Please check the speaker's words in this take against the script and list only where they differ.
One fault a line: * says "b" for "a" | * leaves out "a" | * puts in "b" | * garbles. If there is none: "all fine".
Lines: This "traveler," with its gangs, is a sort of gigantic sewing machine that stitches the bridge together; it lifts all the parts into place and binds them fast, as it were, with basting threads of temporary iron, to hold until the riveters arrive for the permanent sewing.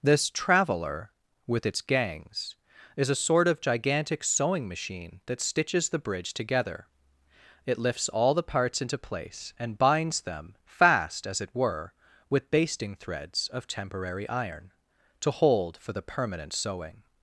* leaves out "until the riveters arrive"